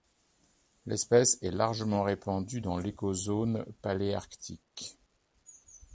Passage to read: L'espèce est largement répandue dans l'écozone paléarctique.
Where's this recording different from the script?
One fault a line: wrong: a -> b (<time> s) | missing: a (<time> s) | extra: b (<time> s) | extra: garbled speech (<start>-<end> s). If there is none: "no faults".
no faults